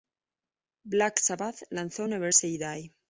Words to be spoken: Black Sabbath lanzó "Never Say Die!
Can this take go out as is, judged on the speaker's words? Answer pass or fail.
pass